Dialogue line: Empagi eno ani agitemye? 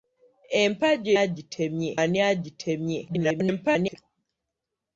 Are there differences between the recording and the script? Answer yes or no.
yes